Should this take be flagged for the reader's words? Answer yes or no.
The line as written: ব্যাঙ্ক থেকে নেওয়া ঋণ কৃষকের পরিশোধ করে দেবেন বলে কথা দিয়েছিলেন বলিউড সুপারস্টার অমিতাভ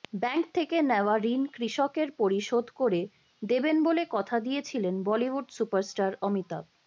no